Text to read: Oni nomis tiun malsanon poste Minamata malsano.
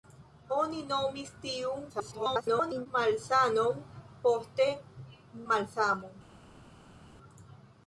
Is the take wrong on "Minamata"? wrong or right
wrong